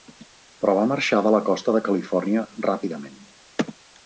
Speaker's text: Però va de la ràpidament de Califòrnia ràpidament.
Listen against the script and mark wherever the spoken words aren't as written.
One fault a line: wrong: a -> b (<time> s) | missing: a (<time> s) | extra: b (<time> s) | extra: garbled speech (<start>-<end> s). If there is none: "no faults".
extra: marxar (0.9 s)
wrong: ràpidament -> costa (1.5 s)